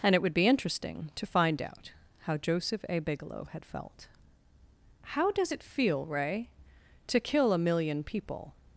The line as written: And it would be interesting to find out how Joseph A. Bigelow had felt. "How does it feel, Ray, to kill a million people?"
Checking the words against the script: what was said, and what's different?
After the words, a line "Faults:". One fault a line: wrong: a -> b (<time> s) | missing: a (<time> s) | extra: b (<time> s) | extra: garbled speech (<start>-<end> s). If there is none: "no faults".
And it would be interesting to find out how Joseph A. Bigelow had felt. "How does it feel, Ray, to kill a million people?"
Faults:
no faults